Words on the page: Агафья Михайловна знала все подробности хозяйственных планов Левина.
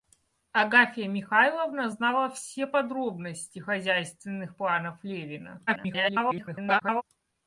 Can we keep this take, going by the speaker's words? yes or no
no